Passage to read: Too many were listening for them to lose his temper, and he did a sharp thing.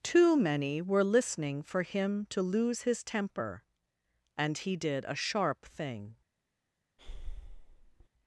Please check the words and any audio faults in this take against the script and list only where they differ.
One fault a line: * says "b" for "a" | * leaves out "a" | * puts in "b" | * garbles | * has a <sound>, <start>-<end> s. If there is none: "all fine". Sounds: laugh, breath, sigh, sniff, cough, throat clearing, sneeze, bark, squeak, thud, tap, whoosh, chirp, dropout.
* says "him" for "them"
* has a breath, 7.0-8.1 s